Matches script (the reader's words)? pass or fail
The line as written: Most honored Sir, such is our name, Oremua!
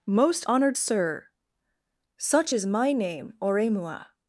fail